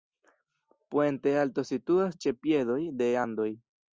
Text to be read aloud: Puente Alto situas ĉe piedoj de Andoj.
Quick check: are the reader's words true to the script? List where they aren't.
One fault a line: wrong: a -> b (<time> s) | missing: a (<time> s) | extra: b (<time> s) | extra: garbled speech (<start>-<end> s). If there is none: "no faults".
no faults